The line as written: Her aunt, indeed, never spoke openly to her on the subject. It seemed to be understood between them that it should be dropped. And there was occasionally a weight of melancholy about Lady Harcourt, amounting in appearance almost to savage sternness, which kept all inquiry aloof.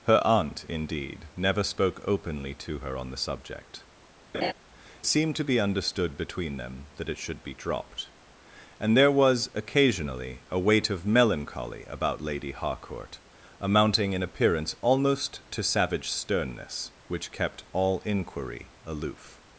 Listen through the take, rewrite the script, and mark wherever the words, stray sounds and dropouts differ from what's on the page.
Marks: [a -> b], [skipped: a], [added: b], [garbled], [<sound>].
Her aunt, indeed, never spoke openly to her on the subject. [skipped: It] [laugh] seemed to be understood between them that it should be dropped. And there was occasionally a weight of melancholy about Lady Harcourt, amounting in appearance almost to savage sternness, which kept all inquiry aloof.